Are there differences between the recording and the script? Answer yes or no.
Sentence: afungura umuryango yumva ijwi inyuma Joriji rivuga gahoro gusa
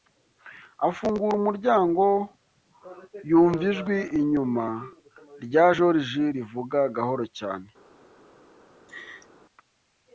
yes